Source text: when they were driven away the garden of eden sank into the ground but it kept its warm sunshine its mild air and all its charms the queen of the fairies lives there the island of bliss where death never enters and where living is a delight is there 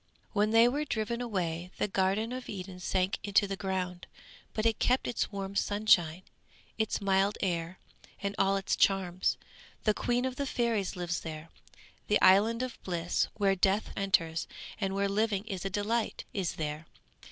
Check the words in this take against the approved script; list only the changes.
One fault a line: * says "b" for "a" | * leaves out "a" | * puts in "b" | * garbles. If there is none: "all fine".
* leaves out "never"